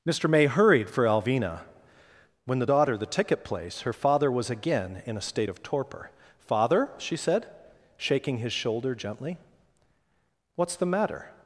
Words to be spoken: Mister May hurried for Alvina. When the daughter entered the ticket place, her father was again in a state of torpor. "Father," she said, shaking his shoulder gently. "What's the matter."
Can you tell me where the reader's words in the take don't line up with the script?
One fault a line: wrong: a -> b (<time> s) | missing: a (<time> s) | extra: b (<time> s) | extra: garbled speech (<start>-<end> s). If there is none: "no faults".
missing: entered (3.0 s)